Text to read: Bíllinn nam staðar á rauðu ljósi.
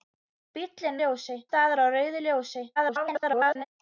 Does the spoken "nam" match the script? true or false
false